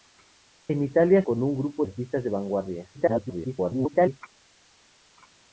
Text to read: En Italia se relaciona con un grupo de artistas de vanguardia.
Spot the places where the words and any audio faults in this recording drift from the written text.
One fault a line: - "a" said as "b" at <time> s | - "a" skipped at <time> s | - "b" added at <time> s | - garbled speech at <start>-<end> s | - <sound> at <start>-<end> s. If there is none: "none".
- "se relaciona" skipped at 1.2 s
- "de" skipped at 1.8 s
- garbled speech at 2.9-4.2 s